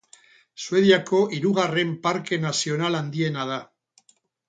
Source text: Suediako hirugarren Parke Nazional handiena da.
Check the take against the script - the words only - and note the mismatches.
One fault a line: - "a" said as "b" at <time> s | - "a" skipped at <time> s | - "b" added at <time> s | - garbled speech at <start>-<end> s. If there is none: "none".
none